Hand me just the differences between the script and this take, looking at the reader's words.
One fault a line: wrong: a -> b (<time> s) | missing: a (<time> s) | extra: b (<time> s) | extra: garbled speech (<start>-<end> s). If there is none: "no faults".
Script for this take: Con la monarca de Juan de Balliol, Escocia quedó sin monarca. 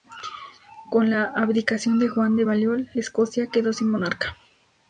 wrong: monarca -> abdicación (1.3 s)